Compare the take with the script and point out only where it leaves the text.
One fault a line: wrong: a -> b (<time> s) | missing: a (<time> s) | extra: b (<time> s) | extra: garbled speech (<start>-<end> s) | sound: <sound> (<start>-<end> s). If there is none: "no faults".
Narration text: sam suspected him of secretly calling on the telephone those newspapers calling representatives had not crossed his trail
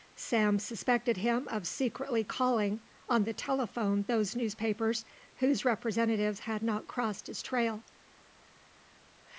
wrong: calling -> whose (5.4 s)